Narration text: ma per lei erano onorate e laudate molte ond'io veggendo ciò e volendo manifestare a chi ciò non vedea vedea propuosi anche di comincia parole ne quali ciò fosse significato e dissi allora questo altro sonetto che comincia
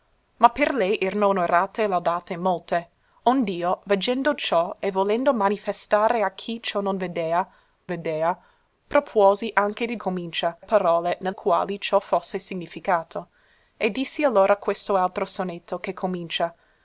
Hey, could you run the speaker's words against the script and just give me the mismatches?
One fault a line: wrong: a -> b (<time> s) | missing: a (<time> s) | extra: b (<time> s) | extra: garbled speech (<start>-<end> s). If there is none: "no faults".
no faults